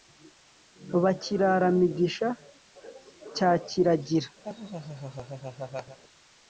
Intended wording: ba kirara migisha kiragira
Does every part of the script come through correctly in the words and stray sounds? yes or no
no